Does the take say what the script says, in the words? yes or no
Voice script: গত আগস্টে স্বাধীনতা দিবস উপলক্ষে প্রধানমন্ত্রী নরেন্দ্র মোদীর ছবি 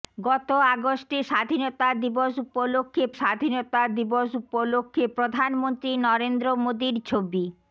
no